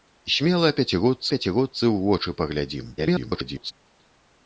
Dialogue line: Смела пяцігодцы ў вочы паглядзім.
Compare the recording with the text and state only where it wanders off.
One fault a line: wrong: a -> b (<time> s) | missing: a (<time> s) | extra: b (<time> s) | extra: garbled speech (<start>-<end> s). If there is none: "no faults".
extra: пяцігодцы (1.3 s)
extra: garbled speech (3.0-3.7 s)